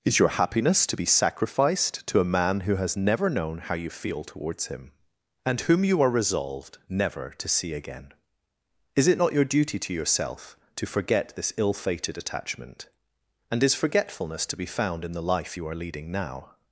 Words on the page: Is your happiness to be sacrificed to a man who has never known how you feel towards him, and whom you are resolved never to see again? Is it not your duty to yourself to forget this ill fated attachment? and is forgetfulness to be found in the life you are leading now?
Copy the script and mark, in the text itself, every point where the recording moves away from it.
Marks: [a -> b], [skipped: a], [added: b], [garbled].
Is your happiness to be sacrificed to a man who has never known how you feel towards him, and whom you are resolved never to see again? Is it not your duty to yourself to forget this ill fated attachment? and is forgetfulness to be found in the life you are leading now?